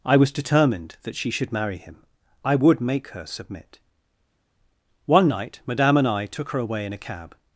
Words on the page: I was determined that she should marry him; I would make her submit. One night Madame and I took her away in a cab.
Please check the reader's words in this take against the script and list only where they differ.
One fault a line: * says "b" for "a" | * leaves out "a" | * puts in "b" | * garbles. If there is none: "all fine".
all fine